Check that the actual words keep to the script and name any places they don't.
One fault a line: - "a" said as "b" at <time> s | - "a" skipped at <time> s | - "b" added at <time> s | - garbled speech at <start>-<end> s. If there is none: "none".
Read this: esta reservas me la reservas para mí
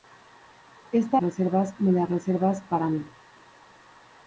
none